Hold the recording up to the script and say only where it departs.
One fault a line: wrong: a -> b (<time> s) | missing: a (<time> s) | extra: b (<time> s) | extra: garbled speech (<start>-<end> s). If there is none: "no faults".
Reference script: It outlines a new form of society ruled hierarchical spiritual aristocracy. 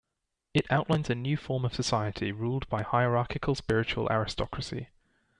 extra: by (2.7 s)